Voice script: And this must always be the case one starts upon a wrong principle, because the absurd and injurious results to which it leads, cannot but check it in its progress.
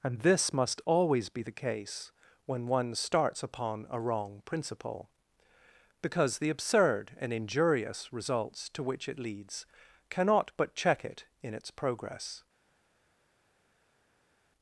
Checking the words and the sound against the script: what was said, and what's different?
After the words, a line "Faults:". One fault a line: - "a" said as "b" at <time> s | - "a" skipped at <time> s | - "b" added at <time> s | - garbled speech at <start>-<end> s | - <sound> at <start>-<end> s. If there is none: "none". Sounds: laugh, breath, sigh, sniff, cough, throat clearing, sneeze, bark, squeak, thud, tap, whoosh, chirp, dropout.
And this must always be the case when one starts upon a wrong principle, because the absurd and injurious results to which it leads, cannot but check it in its progress.
Faults:
- "when" added at 2.5 s